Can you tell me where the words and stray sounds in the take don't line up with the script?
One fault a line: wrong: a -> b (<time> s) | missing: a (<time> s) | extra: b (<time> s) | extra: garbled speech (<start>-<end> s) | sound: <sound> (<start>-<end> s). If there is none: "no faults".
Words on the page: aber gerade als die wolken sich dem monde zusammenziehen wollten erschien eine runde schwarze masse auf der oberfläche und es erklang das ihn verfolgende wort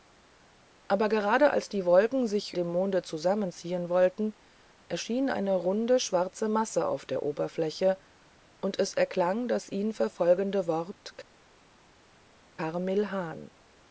no faults